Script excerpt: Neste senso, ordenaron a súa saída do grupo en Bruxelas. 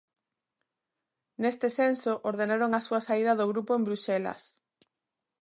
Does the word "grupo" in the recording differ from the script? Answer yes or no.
no